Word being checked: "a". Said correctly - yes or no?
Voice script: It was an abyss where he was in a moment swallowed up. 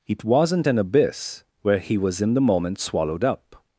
no